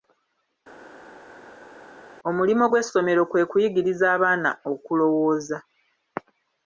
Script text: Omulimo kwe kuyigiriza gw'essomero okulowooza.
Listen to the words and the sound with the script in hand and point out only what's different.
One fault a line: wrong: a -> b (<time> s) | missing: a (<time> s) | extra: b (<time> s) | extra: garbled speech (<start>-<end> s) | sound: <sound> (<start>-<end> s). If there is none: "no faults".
extra: gw'essomero (2.7 s)
wrong: gw'essomero -> abaana (4.1 s)